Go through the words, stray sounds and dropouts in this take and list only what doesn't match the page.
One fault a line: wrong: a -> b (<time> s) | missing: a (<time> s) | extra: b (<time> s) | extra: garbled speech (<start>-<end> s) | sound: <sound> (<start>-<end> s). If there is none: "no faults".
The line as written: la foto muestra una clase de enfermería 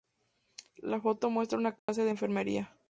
sound: dropout (1.8-1.9 s)